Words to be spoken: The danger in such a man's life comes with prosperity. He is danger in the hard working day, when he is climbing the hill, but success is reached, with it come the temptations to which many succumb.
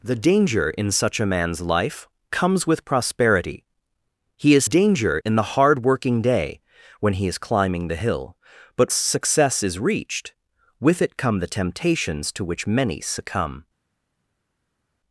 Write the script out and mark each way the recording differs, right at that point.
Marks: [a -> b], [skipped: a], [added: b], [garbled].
The danger in such a man's life comes with prosperity. He is danger in the hard working day, when he is climbing the hill, but success is reached, with it come the temptations to which many succumb.